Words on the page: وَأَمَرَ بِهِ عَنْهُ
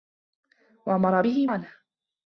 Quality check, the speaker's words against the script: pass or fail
pass